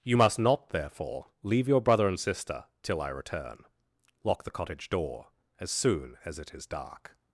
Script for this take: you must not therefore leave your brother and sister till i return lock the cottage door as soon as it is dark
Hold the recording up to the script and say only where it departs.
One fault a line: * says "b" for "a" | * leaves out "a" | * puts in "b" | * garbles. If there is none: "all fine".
all fine